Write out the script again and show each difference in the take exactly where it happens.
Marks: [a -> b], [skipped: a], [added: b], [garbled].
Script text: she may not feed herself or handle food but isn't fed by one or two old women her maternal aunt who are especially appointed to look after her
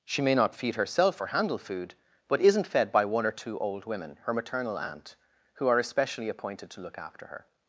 she may not feed herself or handle food but isn't fed by one or two old women her maternal aunt who are especially appointed to look after her